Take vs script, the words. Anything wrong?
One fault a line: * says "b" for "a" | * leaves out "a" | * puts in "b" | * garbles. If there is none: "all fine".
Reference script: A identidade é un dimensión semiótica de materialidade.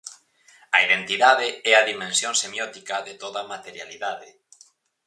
* says "a" for "un"
* puts in "toda"